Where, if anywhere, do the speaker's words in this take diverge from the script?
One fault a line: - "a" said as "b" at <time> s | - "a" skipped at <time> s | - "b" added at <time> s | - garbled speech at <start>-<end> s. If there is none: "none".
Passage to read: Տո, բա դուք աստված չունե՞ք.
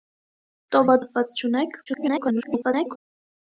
- "դուք" skipped at 1.0 s
- garbled speech at 1.9-3.0 s